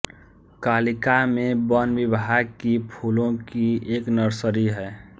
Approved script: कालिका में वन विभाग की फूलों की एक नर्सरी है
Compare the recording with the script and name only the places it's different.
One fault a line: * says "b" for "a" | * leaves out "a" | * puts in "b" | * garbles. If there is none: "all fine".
all fine